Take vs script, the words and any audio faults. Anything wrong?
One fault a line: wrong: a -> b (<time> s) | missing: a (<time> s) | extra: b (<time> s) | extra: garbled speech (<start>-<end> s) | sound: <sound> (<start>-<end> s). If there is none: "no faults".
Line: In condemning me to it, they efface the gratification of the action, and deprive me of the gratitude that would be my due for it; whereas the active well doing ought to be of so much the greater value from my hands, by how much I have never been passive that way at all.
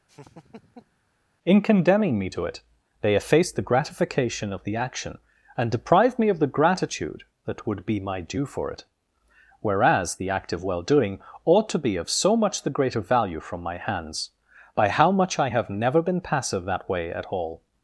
sound: laugh (0.1-1.0 s)
wrong: active -> act of (10.3 s)